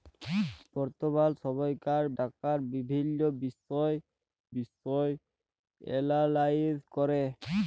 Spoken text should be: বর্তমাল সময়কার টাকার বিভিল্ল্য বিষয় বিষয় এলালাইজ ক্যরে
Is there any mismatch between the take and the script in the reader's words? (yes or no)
no